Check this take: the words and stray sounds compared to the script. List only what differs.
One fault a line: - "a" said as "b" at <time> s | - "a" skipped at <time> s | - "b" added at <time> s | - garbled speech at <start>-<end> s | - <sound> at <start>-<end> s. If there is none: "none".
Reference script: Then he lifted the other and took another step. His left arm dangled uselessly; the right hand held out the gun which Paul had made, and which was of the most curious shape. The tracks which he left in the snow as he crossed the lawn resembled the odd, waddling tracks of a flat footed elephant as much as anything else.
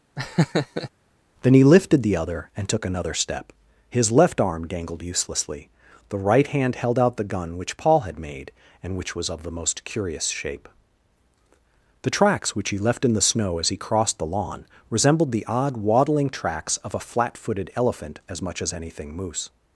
- laugh at 0.2-0.9 s
- "else" said as "moose" at 19.1 s